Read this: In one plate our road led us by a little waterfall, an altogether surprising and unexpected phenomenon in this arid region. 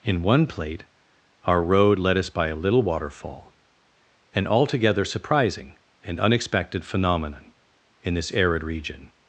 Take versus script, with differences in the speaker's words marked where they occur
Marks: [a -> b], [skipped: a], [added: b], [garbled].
In one plate our road led us by a little waterfall, an altogether surprising and unexpected phenomenon in this arid region.